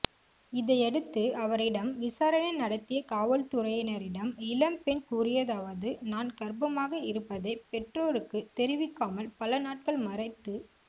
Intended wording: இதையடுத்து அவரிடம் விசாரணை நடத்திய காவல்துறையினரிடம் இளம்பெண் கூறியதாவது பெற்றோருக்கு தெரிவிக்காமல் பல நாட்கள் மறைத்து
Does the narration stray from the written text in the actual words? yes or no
yes